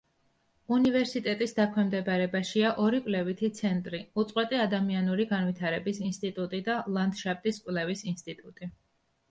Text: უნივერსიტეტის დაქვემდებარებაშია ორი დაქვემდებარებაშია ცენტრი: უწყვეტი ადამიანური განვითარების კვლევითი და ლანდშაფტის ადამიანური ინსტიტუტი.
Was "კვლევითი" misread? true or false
true